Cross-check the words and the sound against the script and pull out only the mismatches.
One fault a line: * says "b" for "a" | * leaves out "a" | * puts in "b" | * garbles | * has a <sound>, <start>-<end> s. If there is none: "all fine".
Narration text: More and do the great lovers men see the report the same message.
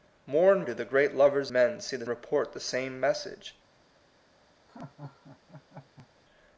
* has a laugh, 4.7-6.1 s